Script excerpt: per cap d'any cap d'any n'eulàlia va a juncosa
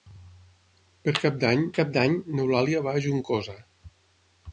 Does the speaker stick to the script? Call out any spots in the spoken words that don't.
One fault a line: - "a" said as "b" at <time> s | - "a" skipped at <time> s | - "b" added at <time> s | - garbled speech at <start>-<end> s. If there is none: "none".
none